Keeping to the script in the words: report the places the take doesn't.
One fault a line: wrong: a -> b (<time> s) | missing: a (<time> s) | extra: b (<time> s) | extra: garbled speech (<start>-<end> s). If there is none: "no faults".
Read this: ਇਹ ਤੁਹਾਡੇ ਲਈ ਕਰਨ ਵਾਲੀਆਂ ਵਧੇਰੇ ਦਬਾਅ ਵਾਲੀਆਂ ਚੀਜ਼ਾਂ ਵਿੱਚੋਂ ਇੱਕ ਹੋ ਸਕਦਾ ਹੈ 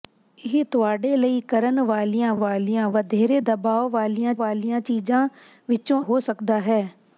extra: ਵਾਲੀਆਂ (2.3 s)
extra: ਵਾਲੀਆਂ (4.4 s)
missing: ਇੱਕ (6.0 s)